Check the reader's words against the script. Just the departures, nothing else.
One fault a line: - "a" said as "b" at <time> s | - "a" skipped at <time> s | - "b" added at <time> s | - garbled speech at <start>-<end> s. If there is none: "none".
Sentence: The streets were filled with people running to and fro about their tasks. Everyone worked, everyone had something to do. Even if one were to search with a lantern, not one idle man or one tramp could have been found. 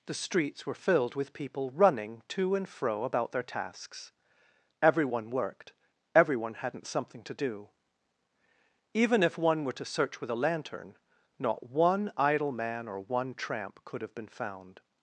- "had" said as "hadn't" at 6.5 s